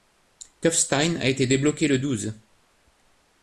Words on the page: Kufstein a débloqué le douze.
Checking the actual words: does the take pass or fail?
fail